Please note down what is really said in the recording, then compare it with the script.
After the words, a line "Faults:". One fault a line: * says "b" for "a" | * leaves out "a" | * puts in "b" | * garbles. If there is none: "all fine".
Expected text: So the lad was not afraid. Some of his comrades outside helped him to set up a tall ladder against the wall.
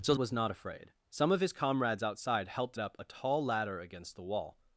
So was not afraid. Some of his comrades outside helped up a tall ladder against the wall.
Faults:
* leaves out "the lad"
* leaves out "him to set"